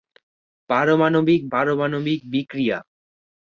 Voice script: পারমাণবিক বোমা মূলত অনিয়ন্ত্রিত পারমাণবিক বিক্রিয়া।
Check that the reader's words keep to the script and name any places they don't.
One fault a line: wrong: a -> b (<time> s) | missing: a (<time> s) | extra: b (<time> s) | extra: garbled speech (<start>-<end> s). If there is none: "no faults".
missing: বোমা মূলত অনিয়ন্ত্রিত (1.4 s)